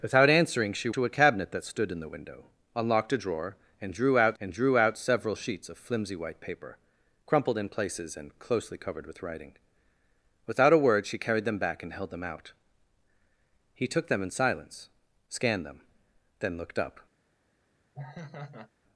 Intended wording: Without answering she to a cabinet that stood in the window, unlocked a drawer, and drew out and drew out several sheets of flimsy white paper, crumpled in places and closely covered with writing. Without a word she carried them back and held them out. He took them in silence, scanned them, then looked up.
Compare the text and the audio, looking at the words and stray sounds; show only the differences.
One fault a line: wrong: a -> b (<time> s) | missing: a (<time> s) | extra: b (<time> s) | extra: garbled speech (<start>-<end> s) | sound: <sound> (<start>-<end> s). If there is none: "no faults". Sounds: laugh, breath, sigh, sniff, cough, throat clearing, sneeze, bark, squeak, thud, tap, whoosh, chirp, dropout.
sound: laugh (17.9-18.7 s)